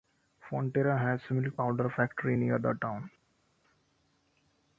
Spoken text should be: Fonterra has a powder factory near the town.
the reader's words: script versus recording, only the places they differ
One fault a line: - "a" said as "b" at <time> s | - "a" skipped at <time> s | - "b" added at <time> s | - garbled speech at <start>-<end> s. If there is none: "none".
- "milk" added at 1.4 s